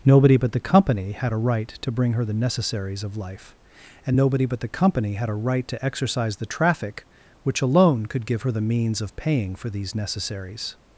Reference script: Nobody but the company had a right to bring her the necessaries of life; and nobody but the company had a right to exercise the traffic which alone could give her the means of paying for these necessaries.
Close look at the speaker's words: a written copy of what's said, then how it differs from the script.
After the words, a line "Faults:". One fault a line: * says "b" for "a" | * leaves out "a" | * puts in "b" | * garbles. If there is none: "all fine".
Nobody but the company had a right to bring her the necessaries of life; and nobody but the company had a right to exercise the traffic which alone could give her the means of paying for these necessaries.
Faults:
all fine